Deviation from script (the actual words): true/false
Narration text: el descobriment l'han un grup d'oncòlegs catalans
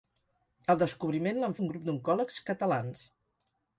false